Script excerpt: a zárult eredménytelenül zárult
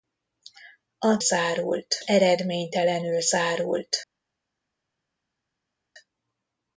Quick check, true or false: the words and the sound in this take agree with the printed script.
true